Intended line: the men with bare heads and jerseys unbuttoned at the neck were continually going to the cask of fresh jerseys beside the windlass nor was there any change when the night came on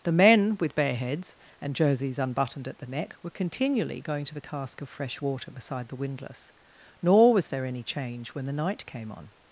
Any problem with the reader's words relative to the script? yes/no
yes